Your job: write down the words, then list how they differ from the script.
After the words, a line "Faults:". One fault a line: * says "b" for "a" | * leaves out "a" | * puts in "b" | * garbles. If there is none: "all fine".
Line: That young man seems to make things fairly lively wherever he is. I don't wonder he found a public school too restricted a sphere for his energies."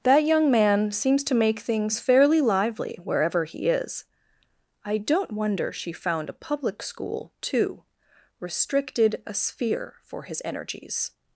That young man seems to make things fairly lively wherever he is. I don't wonder she found a public school too restricted a sphere for his energies."
Faults:
* says "she" for "he"